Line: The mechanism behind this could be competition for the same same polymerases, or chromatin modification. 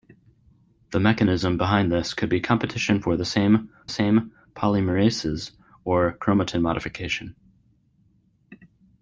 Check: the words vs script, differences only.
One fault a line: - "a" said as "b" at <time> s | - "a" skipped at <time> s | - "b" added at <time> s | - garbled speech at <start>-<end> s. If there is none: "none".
none